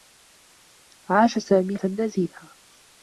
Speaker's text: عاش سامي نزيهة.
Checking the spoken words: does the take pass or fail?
pass